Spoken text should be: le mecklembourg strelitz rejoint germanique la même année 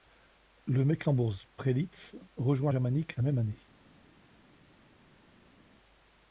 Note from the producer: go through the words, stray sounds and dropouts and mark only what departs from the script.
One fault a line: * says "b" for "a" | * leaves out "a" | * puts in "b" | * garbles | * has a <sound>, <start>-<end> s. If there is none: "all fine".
all fine